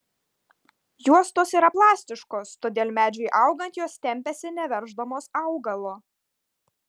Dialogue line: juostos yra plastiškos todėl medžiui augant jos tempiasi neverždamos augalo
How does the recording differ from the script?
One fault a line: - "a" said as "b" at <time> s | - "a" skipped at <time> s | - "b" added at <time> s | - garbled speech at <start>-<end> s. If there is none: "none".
none